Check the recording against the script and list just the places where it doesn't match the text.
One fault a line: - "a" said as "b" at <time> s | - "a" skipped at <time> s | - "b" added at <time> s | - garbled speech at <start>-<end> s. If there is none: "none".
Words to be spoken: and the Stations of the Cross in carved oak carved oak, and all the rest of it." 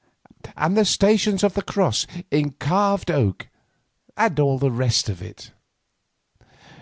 - "carved oak" skipped at 3.5 s